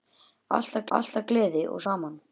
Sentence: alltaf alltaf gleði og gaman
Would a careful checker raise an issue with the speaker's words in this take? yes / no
no